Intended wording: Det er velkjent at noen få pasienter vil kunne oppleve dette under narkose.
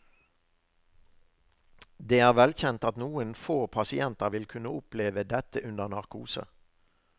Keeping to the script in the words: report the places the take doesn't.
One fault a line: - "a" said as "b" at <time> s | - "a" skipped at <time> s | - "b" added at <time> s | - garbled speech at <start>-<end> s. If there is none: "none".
none